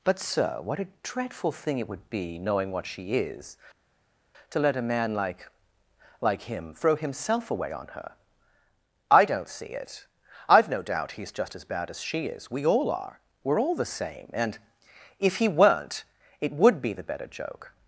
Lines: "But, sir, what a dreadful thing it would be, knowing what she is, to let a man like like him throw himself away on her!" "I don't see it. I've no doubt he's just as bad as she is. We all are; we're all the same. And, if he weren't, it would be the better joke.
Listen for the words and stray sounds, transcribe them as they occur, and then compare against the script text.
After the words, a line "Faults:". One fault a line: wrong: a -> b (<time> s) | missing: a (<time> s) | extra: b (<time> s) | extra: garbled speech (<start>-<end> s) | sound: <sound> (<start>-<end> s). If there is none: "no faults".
"But, sir, what a dreadful thing it would be, knowing what she is, to let a man like like him throw himself away on her!" "I don't see it. I've no doubt he's just as bad as she is. We all are; we're all the same. And, if he weren't, it would be the better joke.
Faults:
no faults